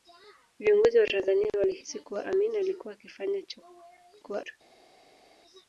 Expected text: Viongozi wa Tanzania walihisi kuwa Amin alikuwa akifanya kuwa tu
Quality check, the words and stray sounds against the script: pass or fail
pass